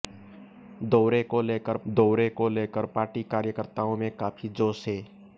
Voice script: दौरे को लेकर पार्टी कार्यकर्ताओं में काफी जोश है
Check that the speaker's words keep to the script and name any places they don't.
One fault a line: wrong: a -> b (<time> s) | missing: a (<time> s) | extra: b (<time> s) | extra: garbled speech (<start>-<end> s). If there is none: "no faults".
extra: दौरे को लेकर (1.9 s)